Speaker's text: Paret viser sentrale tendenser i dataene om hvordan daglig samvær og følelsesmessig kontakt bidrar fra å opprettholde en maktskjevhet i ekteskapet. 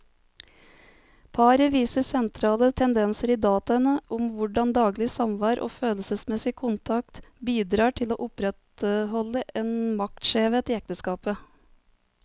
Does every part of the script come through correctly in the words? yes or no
no